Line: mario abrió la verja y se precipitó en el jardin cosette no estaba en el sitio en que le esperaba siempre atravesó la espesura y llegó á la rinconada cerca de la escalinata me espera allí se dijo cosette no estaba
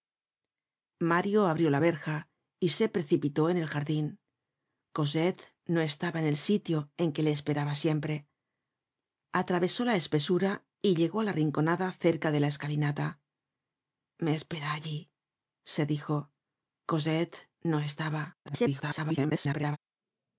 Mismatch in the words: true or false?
true